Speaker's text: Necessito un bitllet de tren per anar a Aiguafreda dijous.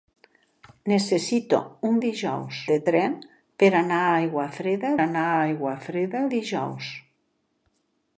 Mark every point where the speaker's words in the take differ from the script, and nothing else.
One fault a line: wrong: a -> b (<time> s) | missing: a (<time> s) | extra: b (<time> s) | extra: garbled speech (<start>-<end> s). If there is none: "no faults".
wrong: bitllet -> dijous (2.0 s)
extra: anar a Aiguafreda (5.0 s)